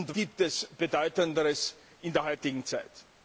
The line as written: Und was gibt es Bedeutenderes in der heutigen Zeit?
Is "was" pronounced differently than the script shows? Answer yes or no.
yes